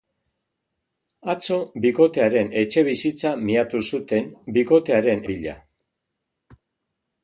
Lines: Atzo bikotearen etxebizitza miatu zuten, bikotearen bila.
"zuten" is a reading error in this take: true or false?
false